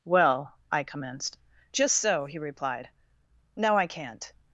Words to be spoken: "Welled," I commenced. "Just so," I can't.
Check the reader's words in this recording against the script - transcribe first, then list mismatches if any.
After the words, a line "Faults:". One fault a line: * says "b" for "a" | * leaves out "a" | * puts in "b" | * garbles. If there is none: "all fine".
"Well," I commenced. "Just so," he replied; "now, I can't.
Faults:
* says "Well" for "Welled"
* puts in "he replied now"